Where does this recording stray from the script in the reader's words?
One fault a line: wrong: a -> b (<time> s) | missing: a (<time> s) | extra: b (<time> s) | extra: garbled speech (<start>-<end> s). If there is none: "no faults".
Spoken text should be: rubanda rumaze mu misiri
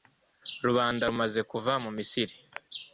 extra: kuva (1.5 s)